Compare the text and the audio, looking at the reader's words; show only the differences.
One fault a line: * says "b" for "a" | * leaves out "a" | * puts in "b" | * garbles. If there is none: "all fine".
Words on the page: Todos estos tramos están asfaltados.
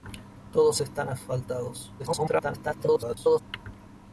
* leaves out "estos tramos"
* garbles